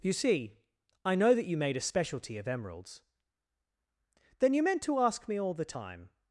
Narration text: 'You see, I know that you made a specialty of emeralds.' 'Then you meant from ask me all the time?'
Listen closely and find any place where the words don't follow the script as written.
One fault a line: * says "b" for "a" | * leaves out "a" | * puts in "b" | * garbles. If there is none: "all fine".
* says "to" for "from"